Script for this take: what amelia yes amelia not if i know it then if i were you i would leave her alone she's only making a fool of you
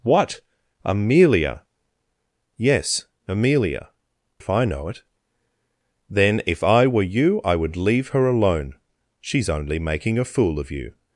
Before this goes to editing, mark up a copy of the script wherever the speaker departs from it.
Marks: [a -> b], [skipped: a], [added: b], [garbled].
what amelia yes amelia [skipped: not] if i know it then if i were you i would leave her alone she's only making a fool of you